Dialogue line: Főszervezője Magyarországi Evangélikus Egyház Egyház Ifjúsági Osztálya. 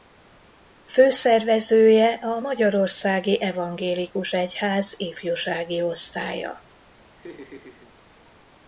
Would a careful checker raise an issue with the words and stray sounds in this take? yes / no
yes